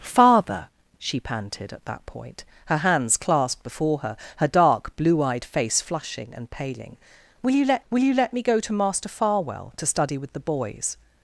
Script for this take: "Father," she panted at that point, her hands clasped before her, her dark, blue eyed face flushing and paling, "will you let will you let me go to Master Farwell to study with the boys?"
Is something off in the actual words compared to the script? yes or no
no